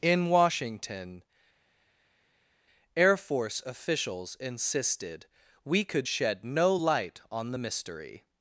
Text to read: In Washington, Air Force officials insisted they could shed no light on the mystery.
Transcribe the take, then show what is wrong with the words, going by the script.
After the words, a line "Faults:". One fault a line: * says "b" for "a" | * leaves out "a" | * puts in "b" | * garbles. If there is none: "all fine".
In Washington, Air Force officials insisted we could shed no light on the mystery.
Faults:
* says "we" for "they"